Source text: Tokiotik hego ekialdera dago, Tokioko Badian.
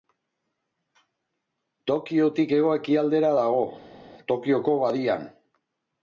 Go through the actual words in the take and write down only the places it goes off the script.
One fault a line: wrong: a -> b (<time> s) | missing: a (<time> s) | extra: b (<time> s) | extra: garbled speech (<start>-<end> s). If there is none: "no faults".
no faults